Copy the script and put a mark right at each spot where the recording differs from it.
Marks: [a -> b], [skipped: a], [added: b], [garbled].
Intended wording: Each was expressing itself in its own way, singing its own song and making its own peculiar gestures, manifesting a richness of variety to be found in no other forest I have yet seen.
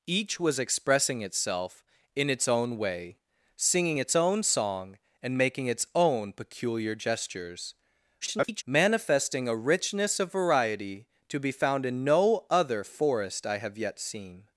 Each was expressing itself in its own way, singing its own song and making its own peculiar gestures, [garbled] manifesting a richness of variety to be found in no other forest I have yet seen.